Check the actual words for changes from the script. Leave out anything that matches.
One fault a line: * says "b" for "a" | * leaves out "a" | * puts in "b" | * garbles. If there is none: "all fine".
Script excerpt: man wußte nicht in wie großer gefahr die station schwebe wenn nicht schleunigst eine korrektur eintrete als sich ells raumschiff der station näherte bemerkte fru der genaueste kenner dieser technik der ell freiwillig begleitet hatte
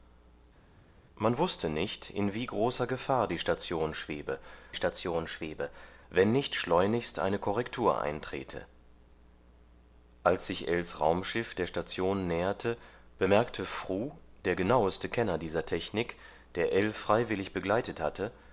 * puts in "station schwebe"